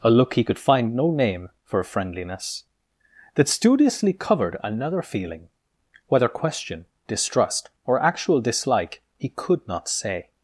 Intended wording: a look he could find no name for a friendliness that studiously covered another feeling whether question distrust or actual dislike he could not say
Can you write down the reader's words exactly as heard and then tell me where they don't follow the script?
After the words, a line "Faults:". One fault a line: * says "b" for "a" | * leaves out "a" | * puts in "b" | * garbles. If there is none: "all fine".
a look he could find no name for friendliness that studiously covered another feeling whether question distrust or actual dislike he could not say
Faults:
* leaves out "a"